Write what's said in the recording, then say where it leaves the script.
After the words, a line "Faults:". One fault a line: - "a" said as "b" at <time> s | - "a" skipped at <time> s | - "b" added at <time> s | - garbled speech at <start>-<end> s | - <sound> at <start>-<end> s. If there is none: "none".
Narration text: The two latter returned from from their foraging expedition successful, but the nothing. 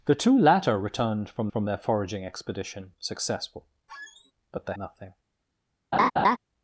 The two latter returned from from their foraging expedition successful, but the nothing.
Faults:
- squeak at 3.9-4.3 s
- laugh at 5.9-6.4 s